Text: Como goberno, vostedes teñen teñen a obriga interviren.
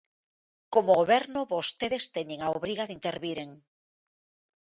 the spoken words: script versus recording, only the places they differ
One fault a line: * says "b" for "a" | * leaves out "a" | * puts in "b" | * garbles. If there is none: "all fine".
* leaves out "teñen"
* puts in "de"